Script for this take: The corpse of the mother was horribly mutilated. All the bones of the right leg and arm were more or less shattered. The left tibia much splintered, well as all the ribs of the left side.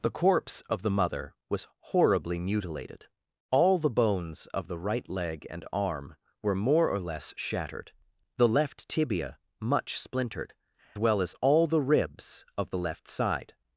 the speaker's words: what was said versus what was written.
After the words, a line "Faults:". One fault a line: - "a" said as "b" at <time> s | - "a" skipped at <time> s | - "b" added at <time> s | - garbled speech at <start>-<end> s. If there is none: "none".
The corpse of the mother was horribly mutilated. All the bones of the right leg and arm were more or less shattered. The left tibia much splintered, well as all the ribs of the left side.
Faults:
none